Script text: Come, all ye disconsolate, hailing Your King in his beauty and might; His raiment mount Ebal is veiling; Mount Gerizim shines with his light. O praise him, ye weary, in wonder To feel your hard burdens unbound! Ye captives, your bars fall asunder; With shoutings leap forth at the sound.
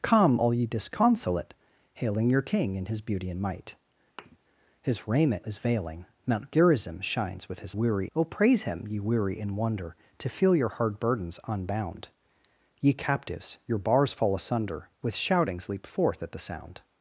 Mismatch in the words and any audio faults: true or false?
true